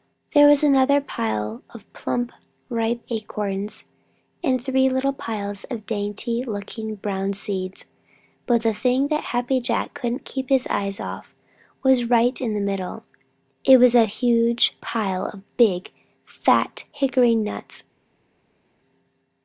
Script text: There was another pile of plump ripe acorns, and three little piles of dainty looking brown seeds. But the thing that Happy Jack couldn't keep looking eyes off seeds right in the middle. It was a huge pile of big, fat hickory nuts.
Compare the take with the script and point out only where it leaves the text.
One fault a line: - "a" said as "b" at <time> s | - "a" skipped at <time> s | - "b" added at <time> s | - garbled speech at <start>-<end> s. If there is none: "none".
- "looking" said as "his" at 10.5 s
- "seeds" said as "was" at 11.8 s